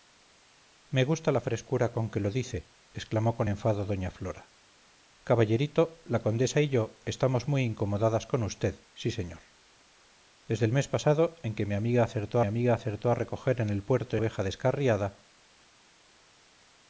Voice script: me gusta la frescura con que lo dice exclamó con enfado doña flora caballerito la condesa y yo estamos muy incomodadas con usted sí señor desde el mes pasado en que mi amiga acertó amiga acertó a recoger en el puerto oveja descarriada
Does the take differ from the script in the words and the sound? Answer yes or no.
no